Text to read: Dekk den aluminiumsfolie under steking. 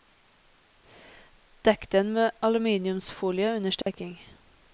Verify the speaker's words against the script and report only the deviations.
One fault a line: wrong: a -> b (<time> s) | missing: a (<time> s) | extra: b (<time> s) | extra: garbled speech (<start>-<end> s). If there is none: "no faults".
extra: med (2.1 s)